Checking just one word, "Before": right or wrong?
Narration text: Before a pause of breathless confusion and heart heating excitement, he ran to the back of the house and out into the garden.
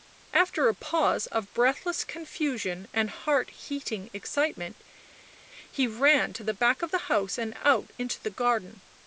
wrong